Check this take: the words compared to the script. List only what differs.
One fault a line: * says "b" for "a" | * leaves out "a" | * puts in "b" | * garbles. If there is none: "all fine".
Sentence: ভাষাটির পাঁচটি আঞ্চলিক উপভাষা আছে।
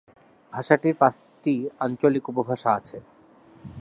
all fine